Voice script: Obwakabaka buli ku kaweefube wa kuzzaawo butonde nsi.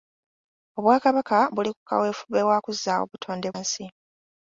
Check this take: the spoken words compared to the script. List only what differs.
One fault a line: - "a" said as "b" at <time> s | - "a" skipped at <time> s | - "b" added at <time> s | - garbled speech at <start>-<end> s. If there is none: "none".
none